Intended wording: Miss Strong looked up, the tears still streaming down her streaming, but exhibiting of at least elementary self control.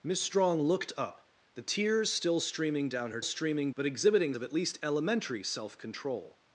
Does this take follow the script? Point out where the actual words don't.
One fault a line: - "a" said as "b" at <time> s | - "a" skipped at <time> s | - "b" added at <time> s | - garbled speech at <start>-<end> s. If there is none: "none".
none